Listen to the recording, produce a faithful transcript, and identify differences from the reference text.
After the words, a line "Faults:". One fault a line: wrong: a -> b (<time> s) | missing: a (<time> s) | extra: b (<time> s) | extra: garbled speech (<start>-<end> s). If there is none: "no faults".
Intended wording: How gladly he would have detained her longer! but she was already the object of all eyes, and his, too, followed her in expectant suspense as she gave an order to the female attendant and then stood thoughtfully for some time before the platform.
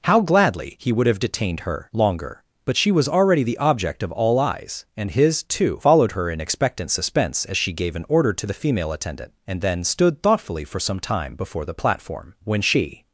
How gladly he would have detained her longer! but she was already the object of all eyes, and his, too, followed her in expectant suspense as she gave an order to the female attendant and then stood thoughtfully for some time before the platform. When she
Faults:
extra: When she (12.4 s)